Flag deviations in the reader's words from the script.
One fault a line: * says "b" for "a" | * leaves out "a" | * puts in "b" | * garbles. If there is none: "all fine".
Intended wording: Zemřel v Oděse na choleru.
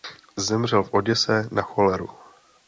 all fine